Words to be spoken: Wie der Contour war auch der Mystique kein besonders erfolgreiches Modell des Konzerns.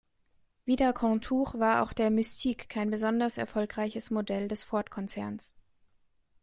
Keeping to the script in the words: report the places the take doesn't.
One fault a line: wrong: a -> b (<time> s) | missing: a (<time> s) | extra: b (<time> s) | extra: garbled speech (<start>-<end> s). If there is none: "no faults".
extra: Ford (4.6 s)